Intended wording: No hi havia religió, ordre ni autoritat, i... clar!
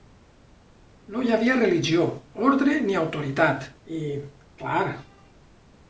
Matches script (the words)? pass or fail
pass